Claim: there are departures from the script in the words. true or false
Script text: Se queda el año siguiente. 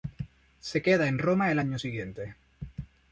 true